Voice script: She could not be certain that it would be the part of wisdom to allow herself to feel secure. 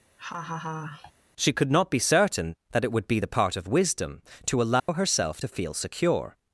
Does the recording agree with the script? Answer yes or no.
yes